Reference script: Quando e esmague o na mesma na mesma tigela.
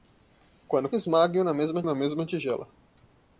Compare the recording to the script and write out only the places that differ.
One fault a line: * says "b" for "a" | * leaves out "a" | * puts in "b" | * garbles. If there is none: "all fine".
all fine